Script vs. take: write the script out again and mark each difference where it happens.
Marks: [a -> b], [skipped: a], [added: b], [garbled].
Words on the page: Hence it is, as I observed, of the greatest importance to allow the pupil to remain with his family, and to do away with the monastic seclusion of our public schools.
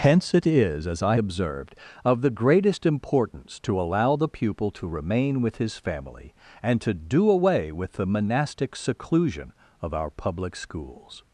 Hence it is, as I observed, of the greatest importance to allow the pupil to remain with his family, and to do away with the monastic seclusion of our public schools.